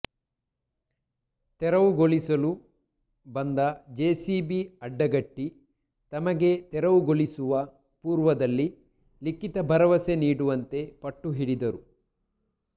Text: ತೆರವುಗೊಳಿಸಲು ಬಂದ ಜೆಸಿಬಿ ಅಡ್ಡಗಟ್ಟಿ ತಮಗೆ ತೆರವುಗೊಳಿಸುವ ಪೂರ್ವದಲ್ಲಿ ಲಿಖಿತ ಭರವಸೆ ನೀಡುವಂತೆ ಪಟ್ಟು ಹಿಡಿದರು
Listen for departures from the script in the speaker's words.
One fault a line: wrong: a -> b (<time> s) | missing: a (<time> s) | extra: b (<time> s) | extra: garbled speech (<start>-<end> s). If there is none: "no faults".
no faults